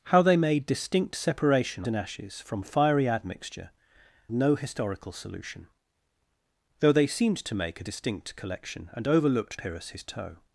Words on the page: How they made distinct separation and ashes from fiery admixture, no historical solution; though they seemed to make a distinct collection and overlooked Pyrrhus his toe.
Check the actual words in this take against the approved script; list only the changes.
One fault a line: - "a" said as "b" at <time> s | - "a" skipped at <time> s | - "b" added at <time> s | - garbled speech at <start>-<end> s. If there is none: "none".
none